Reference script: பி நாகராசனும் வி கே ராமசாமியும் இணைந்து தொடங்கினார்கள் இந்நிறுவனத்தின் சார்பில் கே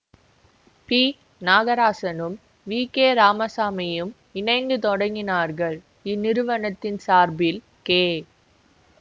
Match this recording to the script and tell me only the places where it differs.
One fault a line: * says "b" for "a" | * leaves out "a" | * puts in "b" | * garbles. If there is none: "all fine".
all fine